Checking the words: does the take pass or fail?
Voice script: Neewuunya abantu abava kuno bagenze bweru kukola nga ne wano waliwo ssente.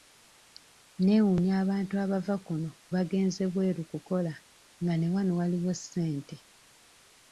pass